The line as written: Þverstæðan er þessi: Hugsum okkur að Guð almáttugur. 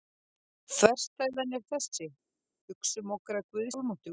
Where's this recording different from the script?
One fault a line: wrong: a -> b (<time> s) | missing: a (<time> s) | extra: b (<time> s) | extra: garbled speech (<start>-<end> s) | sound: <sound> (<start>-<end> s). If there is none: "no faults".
no faults